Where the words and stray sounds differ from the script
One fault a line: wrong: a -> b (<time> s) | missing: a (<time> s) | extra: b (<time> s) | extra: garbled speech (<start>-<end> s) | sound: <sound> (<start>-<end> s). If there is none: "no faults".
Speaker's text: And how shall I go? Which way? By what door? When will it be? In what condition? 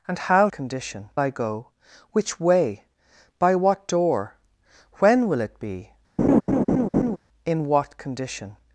wrong: shall -> condition (0.5 s)
sound: laugh (6.2-7.2 s)